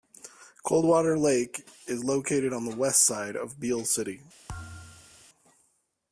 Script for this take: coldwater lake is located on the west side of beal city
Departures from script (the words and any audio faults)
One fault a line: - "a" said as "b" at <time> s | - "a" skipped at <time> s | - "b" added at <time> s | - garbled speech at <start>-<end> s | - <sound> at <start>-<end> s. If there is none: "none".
- thud at 4.5-5.3 s